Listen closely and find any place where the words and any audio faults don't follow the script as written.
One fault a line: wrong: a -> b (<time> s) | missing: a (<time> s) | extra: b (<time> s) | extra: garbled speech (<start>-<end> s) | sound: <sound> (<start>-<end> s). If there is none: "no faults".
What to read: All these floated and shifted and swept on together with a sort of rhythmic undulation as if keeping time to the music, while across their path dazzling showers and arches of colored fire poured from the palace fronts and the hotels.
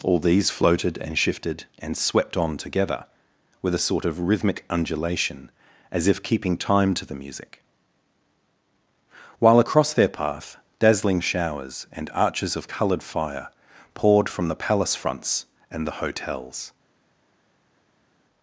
no faults